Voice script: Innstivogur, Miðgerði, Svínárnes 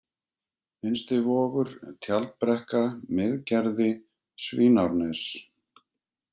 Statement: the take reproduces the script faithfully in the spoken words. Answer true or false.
false